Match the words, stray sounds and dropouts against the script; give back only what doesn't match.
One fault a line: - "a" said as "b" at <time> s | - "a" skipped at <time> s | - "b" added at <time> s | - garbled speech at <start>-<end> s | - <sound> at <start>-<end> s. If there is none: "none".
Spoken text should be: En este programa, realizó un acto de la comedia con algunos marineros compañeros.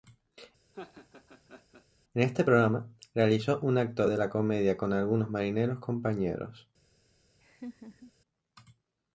- laugh at 0.7-1.9 s
- laugh at 7.4-8.1 s